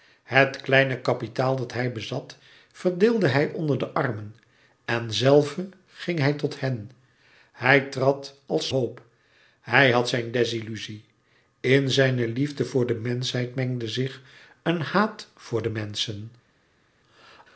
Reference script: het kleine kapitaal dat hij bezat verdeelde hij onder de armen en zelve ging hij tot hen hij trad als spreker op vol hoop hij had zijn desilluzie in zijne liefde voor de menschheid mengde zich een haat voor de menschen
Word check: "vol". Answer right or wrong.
wrong